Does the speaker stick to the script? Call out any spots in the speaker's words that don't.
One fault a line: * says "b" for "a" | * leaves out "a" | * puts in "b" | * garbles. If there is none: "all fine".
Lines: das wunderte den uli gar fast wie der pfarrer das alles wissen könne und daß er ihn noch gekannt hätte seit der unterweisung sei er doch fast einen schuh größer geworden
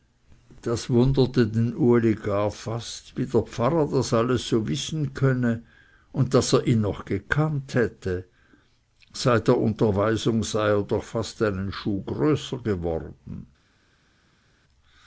* puts in "so"